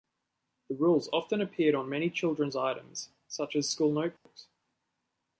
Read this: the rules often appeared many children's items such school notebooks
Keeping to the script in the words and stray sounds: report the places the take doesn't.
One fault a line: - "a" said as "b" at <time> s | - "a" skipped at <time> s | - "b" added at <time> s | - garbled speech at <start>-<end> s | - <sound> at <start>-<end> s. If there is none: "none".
- "on" added at 1.8 s
- "as" added at 3.5 s
- dropout at 4.2-4.3 s